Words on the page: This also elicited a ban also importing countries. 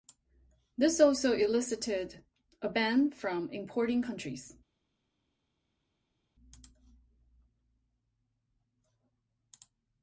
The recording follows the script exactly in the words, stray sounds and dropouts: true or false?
false